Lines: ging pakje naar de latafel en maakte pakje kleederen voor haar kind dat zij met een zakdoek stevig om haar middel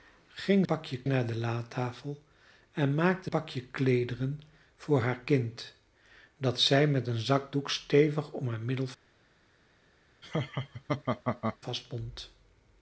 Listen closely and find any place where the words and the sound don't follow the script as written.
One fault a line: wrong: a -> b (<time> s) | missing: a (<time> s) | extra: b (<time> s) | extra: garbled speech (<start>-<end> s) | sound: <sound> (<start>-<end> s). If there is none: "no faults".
sound: laugh (10.2-11.6 s)